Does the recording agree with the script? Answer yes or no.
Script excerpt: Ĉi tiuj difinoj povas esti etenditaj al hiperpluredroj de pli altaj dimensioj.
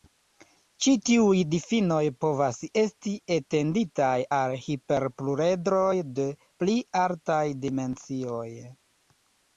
yes